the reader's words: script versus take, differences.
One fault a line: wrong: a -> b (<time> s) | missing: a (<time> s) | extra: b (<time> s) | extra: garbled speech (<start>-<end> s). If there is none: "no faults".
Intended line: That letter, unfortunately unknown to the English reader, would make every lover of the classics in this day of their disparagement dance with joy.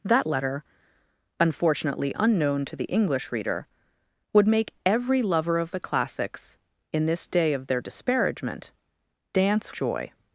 missing: with (9.7 s)